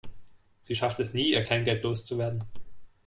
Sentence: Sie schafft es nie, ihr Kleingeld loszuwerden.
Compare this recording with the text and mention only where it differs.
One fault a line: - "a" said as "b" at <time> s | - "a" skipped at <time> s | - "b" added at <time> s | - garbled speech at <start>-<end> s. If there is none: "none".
none